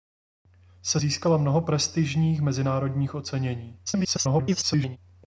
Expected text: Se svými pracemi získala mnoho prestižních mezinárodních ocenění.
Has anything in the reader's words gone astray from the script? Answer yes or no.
yes